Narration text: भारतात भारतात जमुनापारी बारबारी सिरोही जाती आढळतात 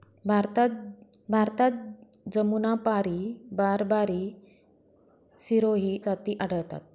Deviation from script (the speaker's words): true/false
false